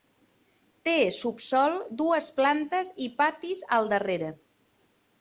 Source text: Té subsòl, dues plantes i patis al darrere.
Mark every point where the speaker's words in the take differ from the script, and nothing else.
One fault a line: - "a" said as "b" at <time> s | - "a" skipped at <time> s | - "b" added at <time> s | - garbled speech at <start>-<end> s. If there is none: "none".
none